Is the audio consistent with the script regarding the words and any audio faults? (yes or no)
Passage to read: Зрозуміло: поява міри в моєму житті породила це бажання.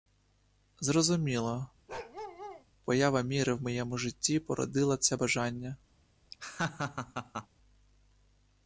no